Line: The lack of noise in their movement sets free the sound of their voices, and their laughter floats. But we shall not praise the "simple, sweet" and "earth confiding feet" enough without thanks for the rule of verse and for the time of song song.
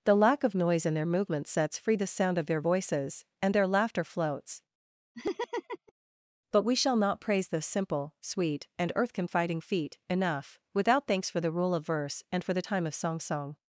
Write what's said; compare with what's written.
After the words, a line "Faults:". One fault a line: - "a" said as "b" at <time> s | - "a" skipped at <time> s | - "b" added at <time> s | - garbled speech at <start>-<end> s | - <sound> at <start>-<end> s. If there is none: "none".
The lack of noise in their movement sets free the sound of their voices, and their laughter floats. But we shall not praise the "simple, sweet" and "earth confiding feet" enough without thanks for the rule of verse and for the time of song song.
Faults:
- laugh at 5.1-5.9 s